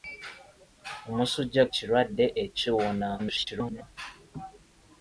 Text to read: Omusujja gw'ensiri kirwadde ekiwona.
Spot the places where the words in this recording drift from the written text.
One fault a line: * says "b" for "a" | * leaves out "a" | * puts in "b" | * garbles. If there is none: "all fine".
* leaves out "gw'ensiri"
* garbles